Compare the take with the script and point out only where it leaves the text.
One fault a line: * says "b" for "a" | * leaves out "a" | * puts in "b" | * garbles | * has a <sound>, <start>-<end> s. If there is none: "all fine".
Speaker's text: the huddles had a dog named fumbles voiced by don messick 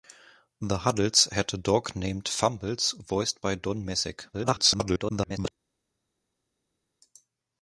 * garbles